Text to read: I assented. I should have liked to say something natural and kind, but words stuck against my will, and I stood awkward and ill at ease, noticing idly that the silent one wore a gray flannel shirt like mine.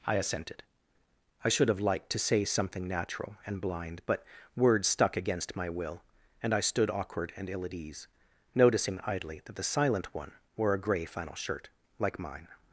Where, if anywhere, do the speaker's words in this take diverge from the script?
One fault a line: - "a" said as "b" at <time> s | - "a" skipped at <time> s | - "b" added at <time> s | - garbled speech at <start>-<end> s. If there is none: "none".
- "kind" said as "blind" at 3.6 s